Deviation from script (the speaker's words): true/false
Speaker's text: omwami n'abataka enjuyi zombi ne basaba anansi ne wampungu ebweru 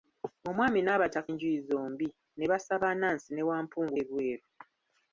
false